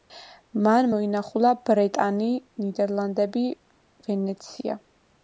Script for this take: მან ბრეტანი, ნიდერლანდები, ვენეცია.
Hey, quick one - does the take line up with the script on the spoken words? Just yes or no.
no